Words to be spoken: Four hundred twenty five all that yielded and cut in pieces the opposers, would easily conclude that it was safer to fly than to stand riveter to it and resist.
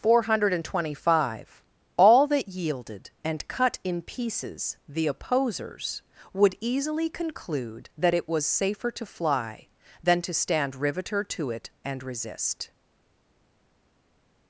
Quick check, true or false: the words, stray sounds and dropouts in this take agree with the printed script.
true